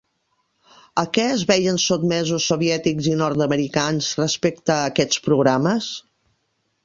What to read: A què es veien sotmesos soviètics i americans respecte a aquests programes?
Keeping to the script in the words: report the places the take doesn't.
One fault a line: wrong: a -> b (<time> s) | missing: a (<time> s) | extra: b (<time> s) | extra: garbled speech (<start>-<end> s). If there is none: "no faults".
extra: nord (3.2 s)